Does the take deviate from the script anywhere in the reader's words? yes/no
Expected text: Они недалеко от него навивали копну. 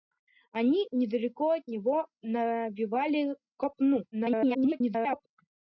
yes